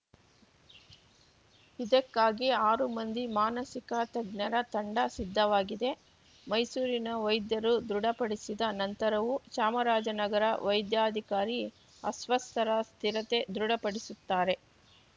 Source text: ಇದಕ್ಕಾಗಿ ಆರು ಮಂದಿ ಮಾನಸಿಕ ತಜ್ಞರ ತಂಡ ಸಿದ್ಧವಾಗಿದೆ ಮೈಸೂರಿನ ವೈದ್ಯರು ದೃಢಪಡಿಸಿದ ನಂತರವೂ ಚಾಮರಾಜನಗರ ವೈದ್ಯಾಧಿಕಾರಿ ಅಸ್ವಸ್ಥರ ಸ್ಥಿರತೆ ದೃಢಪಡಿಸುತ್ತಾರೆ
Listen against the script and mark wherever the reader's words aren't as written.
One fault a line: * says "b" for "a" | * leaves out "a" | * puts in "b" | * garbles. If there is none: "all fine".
all fine